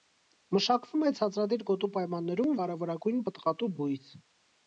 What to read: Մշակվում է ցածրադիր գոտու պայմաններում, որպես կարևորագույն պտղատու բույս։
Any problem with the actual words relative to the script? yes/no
yes